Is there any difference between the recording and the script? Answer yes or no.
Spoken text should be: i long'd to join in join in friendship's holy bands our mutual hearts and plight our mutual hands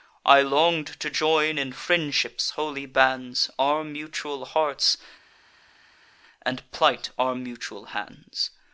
yes